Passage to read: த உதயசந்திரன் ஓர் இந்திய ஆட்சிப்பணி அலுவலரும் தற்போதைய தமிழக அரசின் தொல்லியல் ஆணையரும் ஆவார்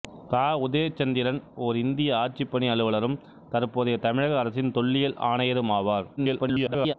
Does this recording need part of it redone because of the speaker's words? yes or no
yes